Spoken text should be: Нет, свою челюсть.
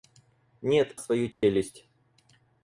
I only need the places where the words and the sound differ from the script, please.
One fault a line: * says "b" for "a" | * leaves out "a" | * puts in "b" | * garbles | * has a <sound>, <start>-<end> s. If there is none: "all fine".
* has a dropout, 1.3-1.4 s